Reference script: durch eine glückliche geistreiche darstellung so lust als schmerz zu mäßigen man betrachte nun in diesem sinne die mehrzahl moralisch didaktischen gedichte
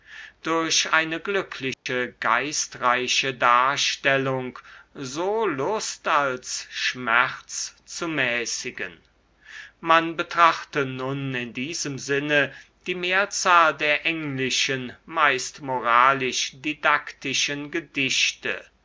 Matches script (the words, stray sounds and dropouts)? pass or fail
fail